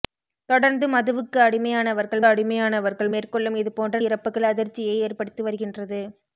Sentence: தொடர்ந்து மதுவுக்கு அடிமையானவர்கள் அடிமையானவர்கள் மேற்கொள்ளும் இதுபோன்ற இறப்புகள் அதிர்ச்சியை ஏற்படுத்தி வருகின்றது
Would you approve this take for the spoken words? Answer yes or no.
yes